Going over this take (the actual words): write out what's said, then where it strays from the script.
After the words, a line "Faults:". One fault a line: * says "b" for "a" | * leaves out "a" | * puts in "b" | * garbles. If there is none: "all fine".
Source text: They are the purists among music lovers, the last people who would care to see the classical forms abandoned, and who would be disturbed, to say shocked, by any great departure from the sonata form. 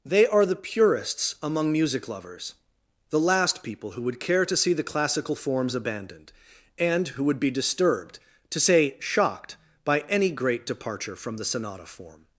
They are the purists among music lovers, the last people who would care to see the classical forms abandoned, and who would be disturbed, to say shocked, by any great departure from the sonata form.
Faults:
all fine